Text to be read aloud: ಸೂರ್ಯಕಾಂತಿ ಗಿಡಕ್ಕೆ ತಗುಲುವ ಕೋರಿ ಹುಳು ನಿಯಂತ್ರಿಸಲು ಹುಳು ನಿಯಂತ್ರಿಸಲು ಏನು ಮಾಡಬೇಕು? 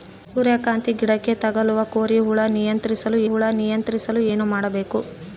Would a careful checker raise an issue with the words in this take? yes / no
no